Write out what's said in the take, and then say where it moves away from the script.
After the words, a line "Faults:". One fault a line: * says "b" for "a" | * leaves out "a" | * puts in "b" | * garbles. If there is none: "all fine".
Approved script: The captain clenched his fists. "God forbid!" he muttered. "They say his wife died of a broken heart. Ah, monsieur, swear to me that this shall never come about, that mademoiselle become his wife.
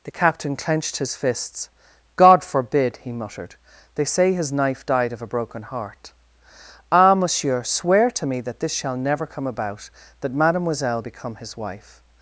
The captain clenched his fists. "God forbid!" he muttered. "They say his knife died of a broken heart. Ah, monsieur, swear to me that this shall never come about, that mademoiselle become his wife.
Faults:
* says "knife" for "wife"